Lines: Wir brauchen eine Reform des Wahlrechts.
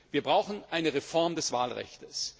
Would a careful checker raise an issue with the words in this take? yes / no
no